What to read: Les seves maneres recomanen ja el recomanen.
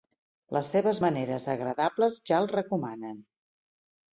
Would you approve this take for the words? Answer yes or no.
no